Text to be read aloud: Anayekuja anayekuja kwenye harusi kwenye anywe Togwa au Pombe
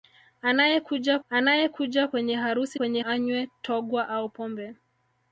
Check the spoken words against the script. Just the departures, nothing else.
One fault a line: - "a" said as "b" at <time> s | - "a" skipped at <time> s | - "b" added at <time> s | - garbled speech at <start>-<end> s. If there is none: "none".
none